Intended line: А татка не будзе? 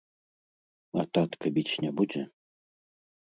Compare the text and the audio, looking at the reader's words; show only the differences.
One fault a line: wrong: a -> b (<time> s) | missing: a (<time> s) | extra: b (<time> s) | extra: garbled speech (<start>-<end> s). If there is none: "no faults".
extra: біць (1.6 s)